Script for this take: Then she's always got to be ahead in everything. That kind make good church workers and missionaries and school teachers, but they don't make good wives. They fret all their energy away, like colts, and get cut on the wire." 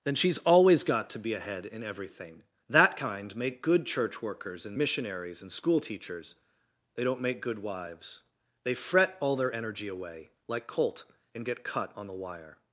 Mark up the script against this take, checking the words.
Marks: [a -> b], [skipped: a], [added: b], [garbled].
Then she's always got to be ahead in everything. That kind make good church workers and missionaries and school teachers, [skipped: but] they don't make good wives. They fret all their energy away, like [colts, -> colt] and get cut on the wire."